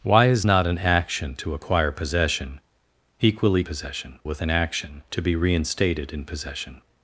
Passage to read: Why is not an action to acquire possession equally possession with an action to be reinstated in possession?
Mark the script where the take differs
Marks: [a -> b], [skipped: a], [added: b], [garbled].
Why is not an action to acquire possession equally possession with an action to be reinstated in possession?